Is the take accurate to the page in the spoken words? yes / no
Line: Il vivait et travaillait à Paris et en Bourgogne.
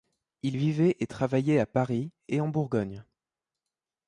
yes